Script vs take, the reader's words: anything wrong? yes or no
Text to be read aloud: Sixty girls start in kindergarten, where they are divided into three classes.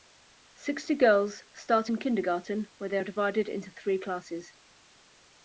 no